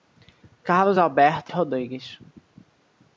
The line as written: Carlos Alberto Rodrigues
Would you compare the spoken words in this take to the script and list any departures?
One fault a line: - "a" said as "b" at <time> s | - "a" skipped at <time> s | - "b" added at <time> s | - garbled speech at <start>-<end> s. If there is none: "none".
none